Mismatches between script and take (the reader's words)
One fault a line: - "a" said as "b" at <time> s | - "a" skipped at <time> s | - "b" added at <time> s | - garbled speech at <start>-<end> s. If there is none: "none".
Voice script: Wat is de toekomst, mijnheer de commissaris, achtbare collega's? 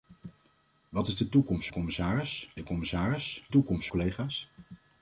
- "mijnheer" said as "commissaris" at 1.7 s
- "achtbare" said as "toekomst" at 3.5 s